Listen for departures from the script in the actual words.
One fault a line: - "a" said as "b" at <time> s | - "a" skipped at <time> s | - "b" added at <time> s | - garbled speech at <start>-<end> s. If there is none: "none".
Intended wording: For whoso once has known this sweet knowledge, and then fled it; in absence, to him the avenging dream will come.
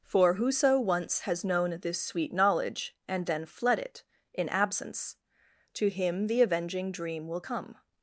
none